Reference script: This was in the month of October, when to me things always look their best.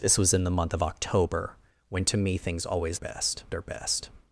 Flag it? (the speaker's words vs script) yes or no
yes